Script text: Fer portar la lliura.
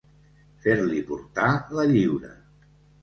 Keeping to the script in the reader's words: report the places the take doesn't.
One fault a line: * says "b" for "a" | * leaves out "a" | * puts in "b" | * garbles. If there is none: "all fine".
* puts in "li"